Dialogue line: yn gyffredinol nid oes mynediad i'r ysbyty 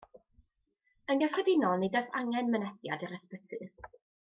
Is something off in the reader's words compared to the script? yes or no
yes